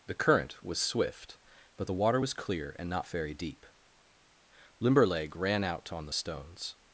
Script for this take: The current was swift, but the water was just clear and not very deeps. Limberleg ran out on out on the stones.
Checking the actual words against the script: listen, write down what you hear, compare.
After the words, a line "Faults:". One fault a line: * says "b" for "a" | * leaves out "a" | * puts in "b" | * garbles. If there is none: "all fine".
The current was swift, but the water was clear and not very deep. Limberleg ran out on the stones.
Faults:
* leaves out "just"
* says "deep" for "deeps"
* leaves out "out on"